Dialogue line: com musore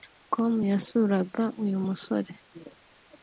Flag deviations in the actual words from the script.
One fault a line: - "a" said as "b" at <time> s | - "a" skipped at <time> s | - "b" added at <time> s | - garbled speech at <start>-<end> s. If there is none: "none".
- "yasuraga uyu" added at 0.7 s